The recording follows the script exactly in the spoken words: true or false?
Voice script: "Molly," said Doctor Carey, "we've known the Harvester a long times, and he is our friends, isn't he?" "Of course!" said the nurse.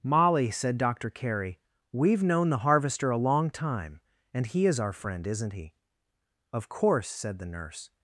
false